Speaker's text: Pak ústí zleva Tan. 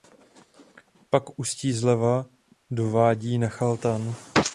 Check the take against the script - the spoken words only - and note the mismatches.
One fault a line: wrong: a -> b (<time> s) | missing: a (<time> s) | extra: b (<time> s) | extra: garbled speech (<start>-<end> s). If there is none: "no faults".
extra: do vádí Nachal (2.7 s)